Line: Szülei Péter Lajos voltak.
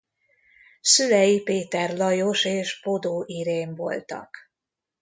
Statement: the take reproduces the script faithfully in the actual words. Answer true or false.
false